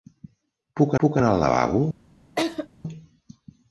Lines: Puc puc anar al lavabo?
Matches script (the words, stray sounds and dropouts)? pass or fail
fail